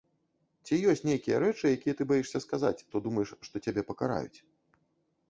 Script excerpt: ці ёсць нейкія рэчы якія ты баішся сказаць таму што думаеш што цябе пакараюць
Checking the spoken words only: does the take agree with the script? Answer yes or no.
no